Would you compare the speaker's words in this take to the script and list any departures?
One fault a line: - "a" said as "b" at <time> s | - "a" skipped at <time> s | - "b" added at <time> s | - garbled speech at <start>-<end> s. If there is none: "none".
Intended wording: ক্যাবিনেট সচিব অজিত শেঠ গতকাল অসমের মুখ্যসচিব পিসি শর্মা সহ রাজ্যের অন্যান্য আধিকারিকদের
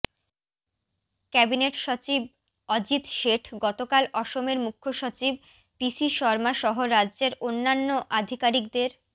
none